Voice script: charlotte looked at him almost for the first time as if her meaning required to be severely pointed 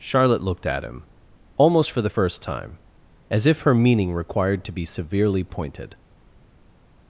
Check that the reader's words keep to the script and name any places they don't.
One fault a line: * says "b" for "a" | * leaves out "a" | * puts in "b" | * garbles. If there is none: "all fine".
all fine